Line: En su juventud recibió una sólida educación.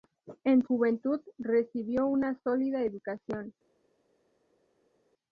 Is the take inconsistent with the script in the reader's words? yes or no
yes